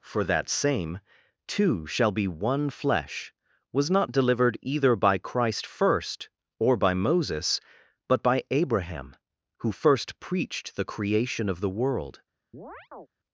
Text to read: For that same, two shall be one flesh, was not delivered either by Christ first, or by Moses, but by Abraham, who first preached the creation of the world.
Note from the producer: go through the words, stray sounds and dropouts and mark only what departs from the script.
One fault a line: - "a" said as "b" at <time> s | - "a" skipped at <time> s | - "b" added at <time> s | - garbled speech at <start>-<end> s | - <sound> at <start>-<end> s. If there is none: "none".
- chirp at 12.5-13.1 s